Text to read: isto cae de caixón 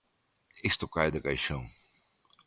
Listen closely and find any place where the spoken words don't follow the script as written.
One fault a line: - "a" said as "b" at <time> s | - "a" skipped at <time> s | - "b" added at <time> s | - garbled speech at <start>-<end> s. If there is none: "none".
none